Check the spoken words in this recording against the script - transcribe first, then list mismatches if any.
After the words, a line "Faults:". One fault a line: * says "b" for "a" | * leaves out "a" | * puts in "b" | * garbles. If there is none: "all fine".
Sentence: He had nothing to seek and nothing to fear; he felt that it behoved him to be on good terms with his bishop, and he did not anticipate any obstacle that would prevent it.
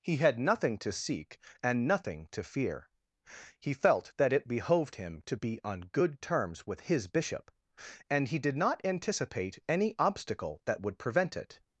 He had nothing to seek and nothing to fear; he felt that it behoved him to be on good terms with his bishop, and he did not anticipate any obstacle that would prevent it.
Faults:
all fine